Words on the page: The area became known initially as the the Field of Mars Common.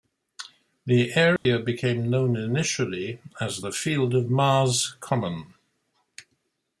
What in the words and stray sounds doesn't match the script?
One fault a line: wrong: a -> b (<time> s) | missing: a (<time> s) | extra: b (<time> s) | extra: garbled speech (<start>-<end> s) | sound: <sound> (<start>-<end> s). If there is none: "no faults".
sound: dropout (1.4-1.5 s)
missing: the (3.7 s)